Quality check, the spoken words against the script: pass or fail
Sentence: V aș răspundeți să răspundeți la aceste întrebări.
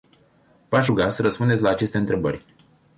fail